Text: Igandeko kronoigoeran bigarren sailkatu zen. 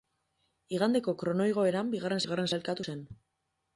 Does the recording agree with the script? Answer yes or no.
no